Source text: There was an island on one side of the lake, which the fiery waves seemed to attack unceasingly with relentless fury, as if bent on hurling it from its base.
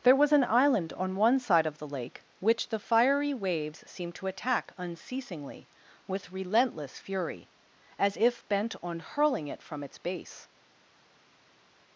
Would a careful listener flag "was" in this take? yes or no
no